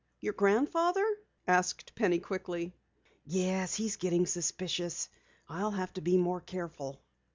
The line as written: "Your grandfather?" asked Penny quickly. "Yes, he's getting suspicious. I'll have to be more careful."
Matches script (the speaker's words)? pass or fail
pass